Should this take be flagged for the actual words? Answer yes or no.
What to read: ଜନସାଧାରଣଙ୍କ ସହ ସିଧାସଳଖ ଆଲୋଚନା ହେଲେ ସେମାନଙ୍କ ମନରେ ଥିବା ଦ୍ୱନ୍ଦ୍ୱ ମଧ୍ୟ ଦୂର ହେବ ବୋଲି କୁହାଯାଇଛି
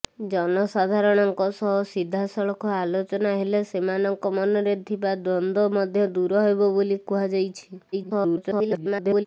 yes